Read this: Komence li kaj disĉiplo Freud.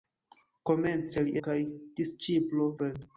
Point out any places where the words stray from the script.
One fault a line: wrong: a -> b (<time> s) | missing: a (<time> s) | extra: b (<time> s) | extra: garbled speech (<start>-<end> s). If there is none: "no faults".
no faults